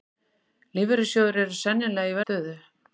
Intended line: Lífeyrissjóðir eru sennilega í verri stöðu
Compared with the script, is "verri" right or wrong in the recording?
wrong